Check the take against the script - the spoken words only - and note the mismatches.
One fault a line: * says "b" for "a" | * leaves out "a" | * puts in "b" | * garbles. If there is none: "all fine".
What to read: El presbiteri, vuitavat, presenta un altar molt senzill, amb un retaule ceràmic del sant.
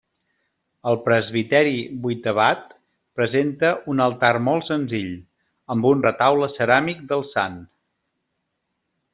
all fine